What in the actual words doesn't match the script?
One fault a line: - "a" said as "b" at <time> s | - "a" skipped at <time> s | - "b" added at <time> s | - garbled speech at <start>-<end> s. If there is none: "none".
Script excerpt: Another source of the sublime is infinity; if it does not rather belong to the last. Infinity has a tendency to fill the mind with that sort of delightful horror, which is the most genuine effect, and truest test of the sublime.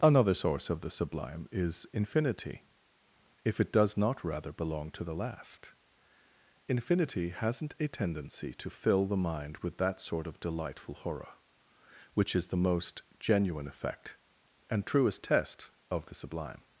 - "has" said as "hasn't" at 7.3 s